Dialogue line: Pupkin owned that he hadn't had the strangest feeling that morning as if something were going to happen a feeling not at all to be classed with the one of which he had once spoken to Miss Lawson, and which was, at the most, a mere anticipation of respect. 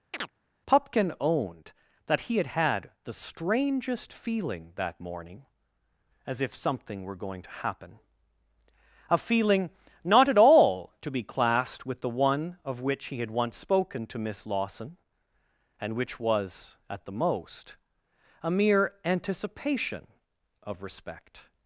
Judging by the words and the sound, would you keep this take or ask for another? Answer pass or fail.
fail